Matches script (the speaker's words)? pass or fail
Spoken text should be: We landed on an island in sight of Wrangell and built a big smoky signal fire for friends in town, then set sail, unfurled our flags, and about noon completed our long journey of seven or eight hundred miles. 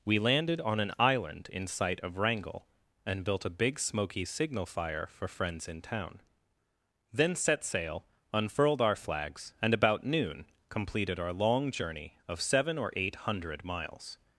pass